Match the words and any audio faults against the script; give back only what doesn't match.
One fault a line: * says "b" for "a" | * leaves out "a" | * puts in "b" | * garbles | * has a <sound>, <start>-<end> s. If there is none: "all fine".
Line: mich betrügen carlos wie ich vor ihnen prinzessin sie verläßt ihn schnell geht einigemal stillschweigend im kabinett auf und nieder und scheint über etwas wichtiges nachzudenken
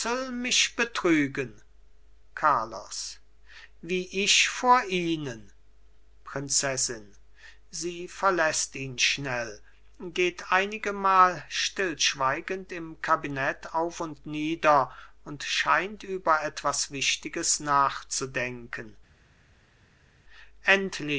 all fine